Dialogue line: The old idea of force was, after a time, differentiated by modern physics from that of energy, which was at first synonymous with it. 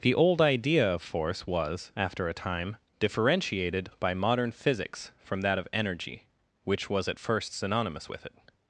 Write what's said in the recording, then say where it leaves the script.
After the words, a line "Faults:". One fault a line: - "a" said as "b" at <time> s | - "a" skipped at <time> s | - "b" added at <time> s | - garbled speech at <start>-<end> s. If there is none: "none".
The old idea of force was, after a time, differentiated by modern physics from that of energy, which was at first synonymous with it.
Faults:
none